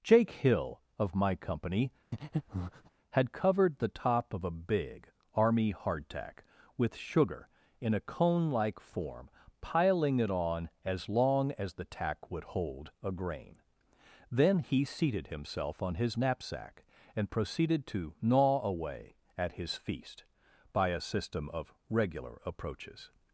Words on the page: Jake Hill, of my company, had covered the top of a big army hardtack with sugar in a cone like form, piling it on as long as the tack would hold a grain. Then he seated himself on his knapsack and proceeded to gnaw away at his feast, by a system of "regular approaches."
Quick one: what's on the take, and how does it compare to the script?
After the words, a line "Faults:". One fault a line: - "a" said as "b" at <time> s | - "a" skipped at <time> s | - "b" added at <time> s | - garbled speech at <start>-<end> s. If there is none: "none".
Jake Hill, of my company, had covered the top of a big army hardtack with sugar in a cone like form, piling it on as long as the tack would hold a grain. Then he seated himself on his knapsack and proceeded to gnaw away at his feast, by a system of "regular approaches."
Faults:
none